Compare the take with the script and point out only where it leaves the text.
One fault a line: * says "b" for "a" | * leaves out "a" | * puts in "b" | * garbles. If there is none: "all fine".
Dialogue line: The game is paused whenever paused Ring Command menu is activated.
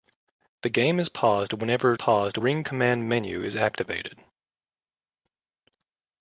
all fine